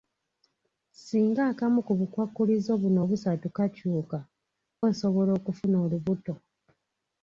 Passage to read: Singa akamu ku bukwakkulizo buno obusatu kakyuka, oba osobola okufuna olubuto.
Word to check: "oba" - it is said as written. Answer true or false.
false